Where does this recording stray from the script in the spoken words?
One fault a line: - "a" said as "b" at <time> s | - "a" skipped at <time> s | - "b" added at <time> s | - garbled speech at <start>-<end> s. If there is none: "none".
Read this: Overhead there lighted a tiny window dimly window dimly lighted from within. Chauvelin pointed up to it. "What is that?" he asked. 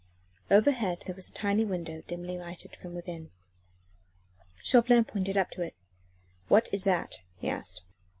- "lighted" said as "was" at 1.1 s
- "window dimly" skipped at 2.4 s